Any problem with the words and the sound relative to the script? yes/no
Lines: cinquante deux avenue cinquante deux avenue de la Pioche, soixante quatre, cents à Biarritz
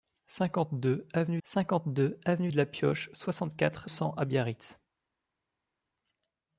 no